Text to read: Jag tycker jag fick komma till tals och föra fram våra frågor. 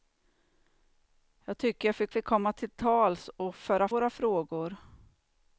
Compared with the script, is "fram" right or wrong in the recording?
wrong